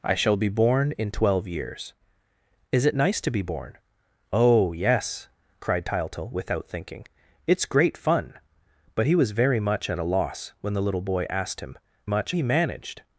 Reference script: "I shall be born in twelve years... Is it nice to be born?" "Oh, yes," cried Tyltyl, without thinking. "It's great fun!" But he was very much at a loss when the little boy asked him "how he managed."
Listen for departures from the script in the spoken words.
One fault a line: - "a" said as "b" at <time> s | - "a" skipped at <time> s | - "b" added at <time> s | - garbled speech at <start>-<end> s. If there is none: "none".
- "how" said as "much" at 12.0 s